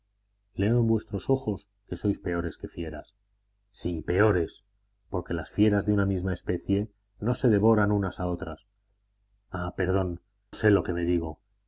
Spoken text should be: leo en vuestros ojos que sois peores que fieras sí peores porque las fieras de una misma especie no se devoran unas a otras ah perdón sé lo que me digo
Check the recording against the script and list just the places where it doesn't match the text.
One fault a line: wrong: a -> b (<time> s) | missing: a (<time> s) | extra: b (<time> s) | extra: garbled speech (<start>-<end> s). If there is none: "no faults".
no faults